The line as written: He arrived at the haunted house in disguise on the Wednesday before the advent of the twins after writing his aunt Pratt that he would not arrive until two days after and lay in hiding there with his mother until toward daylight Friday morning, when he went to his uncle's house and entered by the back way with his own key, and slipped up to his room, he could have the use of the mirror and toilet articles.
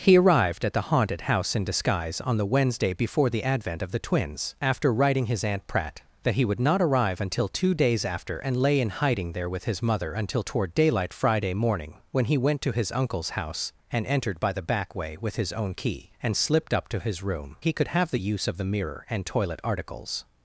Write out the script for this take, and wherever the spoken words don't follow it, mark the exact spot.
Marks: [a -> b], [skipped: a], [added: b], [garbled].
He arrived at the haunted house in disguise on the Wednesday before the advent of the twins after writing his aunt Pratt that he would not arrive until two days after and lay in hiding there with his mother until toward daylight Friday morning, when he went to his uncle's house and entered by the back way with his own key, and slipped up to his room, he could have the use of the mirror and toilet articles.